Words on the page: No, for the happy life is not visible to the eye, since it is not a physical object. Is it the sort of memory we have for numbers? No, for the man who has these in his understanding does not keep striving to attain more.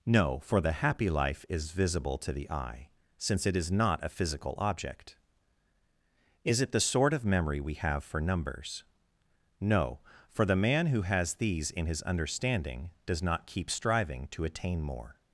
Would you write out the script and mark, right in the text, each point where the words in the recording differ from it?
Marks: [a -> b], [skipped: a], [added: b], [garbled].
No, for the happy life is [skipped: not] visible to the eye, since it is not a physical object. Is it the sort of memory we have for numbers? No, for the man who has these in his understanding does not keep striving to attain more.